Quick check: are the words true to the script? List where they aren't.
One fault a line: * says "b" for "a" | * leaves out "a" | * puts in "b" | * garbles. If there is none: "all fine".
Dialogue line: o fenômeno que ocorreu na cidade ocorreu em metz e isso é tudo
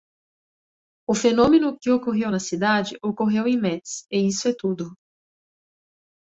all fine